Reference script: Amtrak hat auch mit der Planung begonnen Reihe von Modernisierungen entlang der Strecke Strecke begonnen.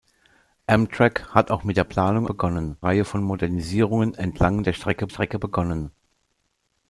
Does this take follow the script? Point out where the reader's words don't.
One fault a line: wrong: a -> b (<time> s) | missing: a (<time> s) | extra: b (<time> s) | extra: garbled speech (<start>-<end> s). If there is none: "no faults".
no faults